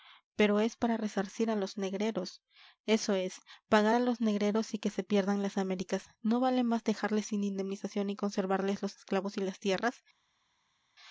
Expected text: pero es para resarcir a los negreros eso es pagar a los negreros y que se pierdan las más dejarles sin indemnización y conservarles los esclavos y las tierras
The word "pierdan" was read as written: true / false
true